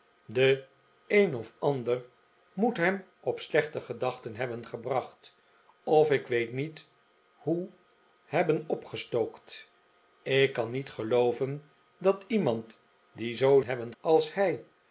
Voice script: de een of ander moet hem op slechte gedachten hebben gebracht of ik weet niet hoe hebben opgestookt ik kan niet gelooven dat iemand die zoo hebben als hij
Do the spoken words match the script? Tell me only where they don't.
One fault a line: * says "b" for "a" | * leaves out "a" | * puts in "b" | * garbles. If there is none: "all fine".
all fine